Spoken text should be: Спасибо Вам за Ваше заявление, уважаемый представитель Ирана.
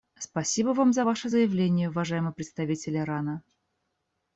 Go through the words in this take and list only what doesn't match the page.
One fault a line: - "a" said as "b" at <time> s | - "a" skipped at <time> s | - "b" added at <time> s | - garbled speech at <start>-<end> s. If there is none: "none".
none